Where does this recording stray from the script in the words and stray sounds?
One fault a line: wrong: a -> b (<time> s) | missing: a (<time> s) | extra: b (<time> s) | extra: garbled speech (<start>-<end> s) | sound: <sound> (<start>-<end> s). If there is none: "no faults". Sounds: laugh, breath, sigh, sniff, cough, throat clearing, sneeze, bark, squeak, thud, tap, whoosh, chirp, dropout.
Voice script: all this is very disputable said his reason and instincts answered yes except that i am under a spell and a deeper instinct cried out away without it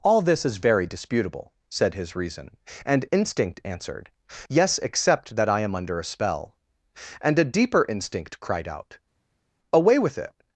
wrong: instincts -> instinct (3.1 s)
wrong: without -> with (10.0 s)